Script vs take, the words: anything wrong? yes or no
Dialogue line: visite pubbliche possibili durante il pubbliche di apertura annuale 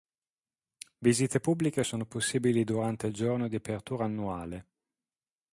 yes